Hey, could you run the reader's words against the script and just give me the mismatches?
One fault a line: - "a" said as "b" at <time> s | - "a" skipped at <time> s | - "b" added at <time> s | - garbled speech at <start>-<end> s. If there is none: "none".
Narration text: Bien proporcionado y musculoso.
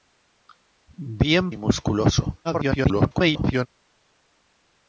- "proporcionado" skipped at 1.5 s
- garbled speech at 2.4-3.7 s